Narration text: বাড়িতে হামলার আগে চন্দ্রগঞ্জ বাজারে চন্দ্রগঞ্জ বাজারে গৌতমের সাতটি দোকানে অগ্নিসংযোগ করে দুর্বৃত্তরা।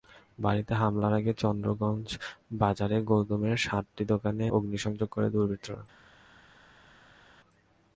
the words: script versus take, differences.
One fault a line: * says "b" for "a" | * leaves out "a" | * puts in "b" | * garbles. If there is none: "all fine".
* leaves out "চন্দ্রগঞ্জ বাজারে"